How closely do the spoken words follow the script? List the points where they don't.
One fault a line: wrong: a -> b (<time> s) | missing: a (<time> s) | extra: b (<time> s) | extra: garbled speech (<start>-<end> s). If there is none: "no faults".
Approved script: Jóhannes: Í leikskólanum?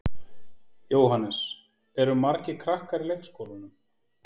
extra: Eru margir krakkar (2.0 s)